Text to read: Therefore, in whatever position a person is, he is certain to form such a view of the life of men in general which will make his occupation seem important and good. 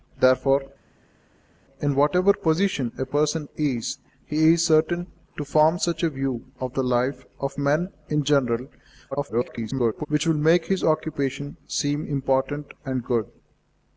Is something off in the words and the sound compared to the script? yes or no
yes